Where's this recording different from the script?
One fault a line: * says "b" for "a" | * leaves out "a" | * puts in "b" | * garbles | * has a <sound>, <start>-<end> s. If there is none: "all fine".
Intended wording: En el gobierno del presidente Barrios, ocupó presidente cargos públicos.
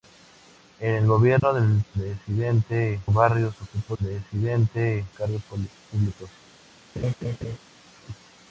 * has a dropout, 1.4-1.4 s
* has a laugh, 7.0-7.6 s